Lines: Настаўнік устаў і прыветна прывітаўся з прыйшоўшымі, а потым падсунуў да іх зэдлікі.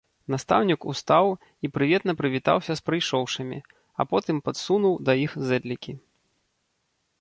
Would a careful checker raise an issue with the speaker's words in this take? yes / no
no